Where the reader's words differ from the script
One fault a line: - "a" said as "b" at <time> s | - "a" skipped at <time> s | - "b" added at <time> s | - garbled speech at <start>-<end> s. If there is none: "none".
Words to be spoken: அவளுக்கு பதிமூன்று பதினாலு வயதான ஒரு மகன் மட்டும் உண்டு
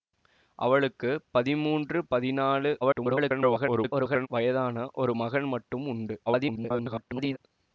- garbled speech at 2.8-4.3 s
- garbled speech at 6.3-7.4 s